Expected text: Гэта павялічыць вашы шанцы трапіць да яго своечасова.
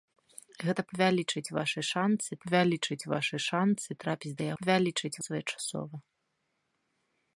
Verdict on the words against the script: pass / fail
fail